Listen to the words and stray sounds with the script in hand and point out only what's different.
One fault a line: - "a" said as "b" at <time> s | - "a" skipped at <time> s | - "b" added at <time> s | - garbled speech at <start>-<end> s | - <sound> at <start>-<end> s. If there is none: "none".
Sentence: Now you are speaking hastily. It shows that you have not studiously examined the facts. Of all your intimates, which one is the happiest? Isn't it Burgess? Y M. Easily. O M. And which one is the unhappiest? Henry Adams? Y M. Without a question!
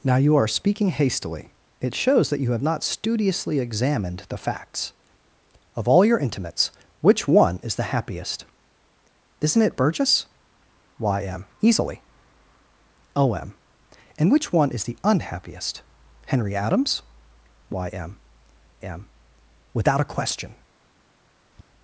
- "M" added at 18.8 s
- tap at 21.5-21.7 s